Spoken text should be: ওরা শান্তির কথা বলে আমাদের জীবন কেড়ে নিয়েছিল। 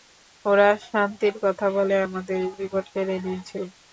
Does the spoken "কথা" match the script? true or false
true